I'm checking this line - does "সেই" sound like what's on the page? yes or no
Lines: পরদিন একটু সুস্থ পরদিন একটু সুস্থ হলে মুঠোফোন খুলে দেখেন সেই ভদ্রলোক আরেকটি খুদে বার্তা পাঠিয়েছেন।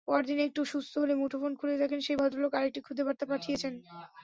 yes